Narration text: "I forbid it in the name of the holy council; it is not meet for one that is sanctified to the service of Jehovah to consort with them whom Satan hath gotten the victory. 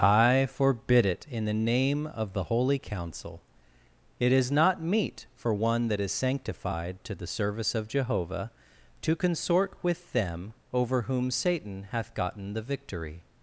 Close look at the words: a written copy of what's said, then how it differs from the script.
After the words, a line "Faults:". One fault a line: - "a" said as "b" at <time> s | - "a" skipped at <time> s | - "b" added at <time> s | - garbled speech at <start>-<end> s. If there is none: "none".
"I forbid it in the name of the holy council; it is not meet for one that is sanctified to the service of Jehovah to consort with them over whom Satan hath gotten the victory.
Faults:
- "over" added at 10.7 s